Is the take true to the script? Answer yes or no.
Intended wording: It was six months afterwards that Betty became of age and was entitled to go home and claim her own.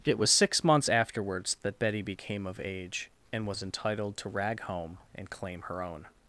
no